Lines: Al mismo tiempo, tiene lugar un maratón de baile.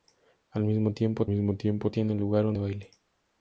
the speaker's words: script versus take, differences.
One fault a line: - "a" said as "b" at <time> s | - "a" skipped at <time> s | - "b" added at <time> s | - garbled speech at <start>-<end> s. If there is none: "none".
- "mismo tiempo" added at 1.3 s
- "maratón" skipped at 2.6 s